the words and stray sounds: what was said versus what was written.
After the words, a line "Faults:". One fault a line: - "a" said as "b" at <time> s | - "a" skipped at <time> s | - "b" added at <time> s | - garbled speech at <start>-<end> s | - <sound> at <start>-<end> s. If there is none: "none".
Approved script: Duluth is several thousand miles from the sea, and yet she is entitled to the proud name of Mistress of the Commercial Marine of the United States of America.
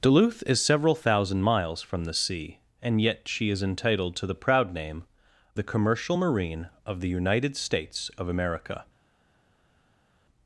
Duluth is several thousand miles from the sea, and yet she is entitled to the proud name the Commercial Marine of the United States of America.
Faults:
- "of Mistress of" skipped at 5.0 s